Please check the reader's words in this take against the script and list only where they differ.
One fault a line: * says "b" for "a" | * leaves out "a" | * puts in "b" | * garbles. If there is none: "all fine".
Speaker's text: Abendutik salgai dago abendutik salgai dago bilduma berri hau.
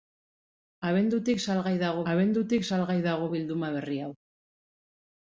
all fine